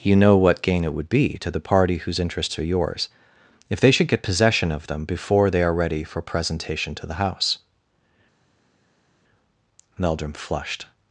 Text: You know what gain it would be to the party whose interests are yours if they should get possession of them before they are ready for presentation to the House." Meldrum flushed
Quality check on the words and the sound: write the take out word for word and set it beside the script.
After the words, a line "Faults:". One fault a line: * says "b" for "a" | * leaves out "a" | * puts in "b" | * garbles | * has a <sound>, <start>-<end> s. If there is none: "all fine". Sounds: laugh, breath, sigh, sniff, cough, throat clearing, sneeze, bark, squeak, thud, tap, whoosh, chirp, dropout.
You know what gain it would be to the party whose interests are yours if they should get possession of them before they are ready for presentation to the House." Meldrum flushed
Faults:
all fine